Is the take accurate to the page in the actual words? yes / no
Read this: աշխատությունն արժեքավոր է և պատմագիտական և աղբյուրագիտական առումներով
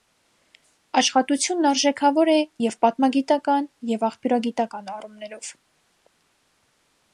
yes